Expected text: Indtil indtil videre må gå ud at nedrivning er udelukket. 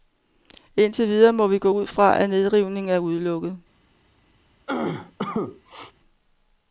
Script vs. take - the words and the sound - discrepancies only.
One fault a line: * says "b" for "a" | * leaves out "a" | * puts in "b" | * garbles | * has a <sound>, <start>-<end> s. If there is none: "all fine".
* leaves out "indtil"
* puts in "vi"
* puts in "fra"
* has a cough, 4.7-5.9 s